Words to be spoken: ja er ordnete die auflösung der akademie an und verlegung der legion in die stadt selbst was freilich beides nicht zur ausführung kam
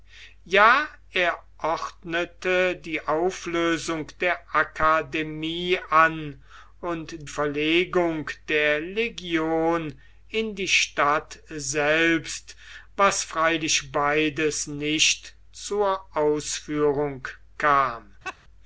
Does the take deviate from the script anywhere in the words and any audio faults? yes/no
yes